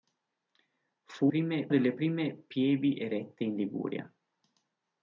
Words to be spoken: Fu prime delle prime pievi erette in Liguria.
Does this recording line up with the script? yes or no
yes